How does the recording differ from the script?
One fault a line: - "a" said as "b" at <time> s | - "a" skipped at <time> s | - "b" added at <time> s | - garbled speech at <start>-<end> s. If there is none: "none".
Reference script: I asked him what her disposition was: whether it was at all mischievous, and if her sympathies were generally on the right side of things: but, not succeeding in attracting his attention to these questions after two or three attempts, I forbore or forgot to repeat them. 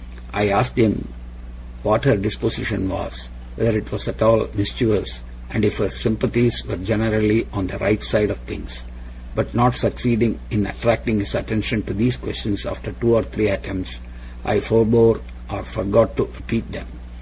none